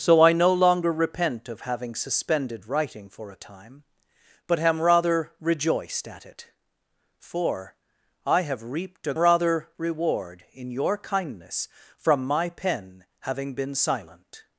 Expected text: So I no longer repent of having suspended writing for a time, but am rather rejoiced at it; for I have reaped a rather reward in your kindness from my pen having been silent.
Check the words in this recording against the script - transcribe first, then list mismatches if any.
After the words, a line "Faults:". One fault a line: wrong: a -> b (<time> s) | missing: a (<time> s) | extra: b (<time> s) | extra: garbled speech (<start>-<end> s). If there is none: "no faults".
So I no longer repent of having suspended writing for a time, but am rather rejoiced at it; for I have reaped a rather reward in your kindness from my pen having been silent.
Faults:
no faults